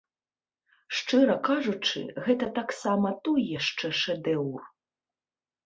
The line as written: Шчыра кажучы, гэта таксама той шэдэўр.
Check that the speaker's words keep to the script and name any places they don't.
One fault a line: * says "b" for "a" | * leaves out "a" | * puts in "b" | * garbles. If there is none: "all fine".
* puts in "яшчэ"